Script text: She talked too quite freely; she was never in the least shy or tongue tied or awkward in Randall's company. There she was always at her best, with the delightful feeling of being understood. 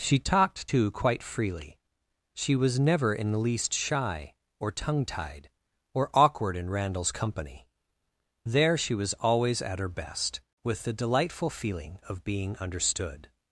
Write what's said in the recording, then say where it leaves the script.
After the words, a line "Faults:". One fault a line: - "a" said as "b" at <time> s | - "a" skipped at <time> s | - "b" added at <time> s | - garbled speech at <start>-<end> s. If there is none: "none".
She talked too quite freely; she was never in the least shy or tongue tied or awkward in Randall's company. There she was always at her best, with the delightful feeling of being understood.
Faults:
none